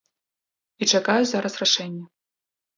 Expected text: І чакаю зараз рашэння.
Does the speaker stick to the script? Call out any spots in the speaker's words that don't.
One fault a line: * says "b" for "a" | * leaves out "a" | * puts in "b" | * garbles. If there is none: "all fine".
all fine